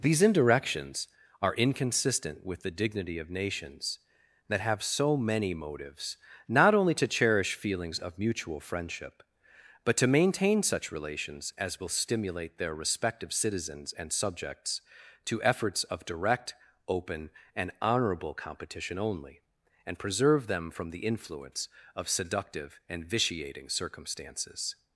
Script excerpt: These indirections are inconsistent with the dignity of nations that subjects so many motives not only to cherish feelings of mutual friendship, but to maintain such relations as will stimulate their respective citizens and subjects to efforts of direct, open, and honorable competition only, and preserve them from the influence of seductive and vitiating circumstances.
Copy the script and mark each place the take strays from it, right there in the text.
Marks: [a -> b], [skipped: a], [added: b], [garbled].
These indirections are inconsistent with the dignity of nations that [subjects -> have] so many motives not only to cherish feelings of mutual friendship, but to maintain such relations as will stimulate their respective citizens and subjects to efforts of direct, open, and honorable competition only, and preserve them from the influence of seductive and vitiating circumstances.